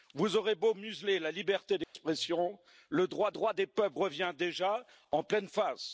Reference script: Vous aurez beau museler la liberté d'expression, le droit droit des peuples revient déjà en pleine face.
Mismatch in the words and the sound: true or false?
true